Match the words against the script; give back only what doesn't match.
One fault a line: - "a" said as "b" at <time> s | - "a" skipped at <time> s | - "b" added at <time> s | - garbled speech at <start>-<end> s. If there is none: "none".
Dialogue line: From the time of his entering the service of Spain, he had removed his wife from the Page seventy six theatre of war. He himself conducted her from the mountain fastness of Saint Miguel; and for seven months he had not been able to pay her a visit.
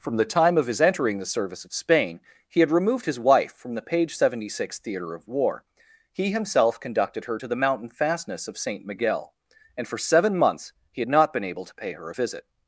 - "from" said as "to" at 7.3 s